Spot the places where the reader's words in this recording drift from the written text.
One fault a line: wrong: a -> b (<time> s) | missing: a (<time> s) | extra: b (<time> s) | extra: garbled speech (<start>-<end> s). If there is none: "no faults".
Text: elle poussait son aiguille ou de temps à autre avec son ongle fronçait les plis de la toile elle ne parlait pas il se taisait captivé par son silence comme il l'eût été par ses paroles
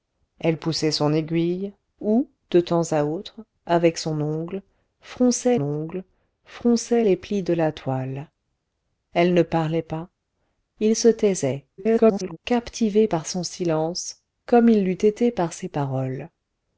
extra: ongle fronçait (5.6 s)
extra: garbled speech (11.8-12.4 s)